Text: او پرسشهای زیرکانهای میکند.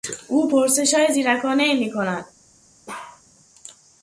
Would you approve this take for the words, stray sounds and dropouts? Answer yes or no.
no